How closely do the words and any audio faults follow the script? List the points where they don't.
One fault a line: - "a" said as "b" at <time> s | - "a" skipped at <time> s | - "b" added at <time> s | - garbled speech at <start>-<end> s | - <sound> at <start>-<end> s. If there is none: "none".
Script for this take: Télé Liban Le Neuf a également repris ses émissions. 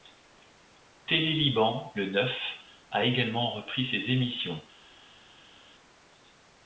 none